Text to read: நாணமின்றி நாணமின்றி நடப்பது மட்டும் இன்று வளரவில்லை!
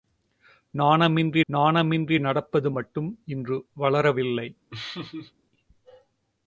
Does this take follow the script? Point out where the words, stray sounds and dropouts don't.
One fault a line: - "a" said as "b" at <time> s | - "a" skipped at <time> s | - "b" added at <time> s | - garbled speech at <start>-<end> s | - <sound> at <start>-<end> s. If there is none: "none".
- laugh at 4.7-5.3 s